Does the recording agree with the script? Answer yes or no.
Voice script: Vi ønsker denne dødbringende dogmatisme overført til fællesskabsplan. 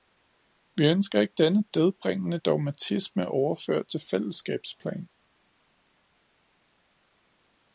no